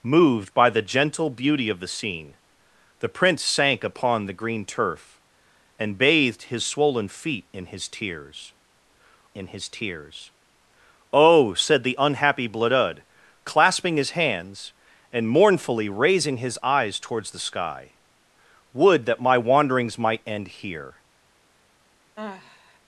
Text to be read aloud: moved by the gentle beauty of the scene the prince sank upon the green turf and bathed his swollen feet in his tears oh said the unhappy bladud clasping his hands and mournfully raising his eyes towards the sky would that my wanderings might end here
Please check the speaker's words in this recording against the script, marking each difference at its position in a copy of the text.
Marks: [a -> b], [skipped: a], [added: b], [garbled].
moved by the gentle beauty of the scene the prince sank upon the green turf and bathed his swollen feet in his tears [added: in his tears] oh said the unhappy bladud clasping his hands and mournfully raising his eyes towards the sky would that my wanderings might end here